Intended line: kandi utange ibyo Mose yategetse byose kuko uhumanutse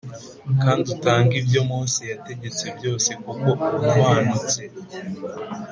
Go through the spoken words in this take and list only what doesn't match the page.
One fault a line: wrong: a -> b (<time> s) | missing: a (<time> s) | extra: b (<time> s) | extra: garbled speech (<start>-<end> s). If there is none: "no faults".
no faults